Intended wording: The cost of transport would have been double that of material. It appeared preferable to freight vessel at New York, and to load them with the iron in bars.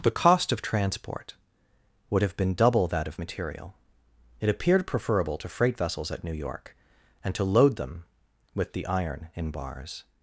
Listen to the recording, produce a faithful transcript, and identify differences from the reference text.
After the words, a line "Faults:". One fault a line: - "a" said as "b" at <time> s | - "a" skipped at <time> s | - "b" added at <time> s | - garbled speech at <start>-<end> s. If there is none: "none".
The cost of transport would have been double that of material. It appeared preferable to freight vessels at New York, and to load them with the iron in bars.
Faults:
- "vessel" said as "vessels" at 5.8 s